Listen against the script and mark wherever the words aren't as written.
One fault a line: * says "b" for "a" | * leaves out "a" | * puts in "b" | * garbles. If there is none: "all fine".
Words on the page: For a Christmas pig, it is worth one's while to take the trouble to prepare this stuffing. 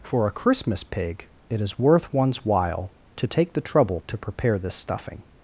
all fine